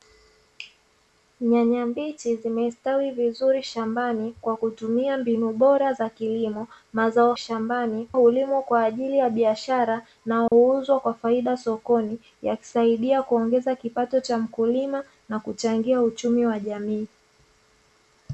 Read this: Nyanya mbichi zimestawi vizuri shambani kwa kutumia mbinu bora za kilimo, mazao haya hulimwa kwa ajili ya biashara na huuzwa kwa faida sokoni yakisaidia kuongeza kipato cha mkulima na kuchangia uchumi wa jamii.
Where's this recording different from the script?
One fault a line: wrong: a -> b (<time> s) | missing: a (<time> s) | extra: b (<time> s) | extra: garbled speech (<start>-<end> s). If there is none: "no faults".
wrong: haya -> shambani (7.4 s)